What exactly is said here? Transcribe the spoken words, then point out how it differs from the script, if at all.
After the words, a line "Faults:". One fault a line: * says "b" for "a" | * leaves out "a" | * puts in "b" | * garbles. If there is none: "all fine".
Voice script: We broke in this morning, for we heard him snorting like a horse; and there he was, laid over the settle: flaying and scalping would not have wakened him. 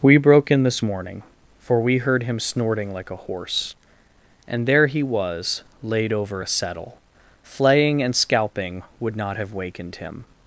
We broke in this morning, for we heard him snorting like a horse; and there he was, laid over a settle: flaying and scalping would not have wakened him.
Faults:
* says "a" for "the"